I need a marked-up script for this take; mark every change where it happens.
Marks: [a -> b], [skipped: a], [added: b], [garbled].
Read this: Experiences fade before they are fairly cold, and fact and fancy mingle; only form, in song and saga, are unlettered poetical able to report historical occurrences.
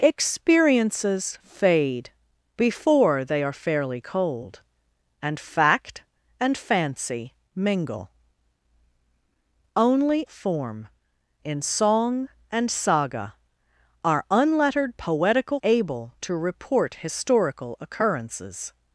Experiences fade before they are fairly cold, and fact and fancy mingle; only form, in song and saga, are unlettered poetical able to report historical occurrences.